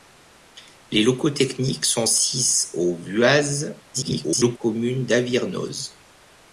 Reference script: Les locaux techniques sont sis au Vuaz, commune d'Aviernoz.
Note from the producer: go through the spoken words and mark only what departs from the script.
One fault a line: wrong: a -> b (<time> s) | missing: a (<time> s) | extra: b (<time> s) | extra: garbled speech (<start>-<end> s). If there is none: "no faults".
extra: garbled speech (3.9-4.6 s)